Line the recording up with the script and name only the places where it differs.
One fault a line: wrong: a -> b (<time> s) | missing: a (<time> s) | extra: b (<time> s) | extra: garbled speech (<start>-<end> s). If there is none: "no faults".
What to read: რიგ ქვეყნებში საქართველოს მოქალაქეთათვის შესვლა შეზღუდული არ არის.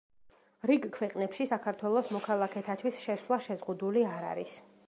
no faults